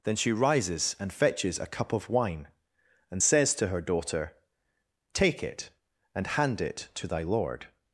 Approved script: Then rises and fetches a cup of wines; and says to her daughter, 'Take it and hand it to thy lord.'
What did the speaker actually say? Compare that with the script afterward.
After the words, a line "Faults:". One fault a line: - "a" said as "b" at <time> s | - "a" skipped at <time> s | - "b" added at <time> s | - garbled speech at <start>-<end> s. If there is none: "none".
Then she rises and fetches a cup of wine; and says to her daughter, 'Take it and hand it to thy lord.'
Faults:
- "she" added at 0.1 s
- "wines" said as "wine" at 2.1 s